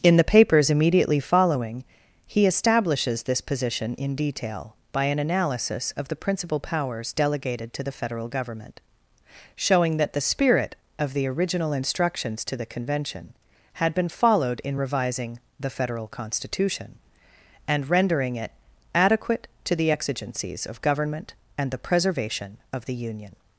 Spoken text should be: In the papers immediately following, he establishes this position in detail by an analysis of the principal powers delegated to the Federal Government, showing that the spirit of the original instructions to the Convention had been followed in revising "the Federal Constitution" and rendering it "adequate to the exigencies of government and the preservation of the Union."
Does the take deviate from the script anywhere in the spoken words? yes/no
no